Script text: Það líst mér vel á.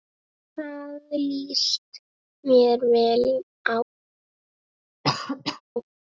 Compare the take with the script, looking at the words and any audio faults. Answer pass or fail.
fail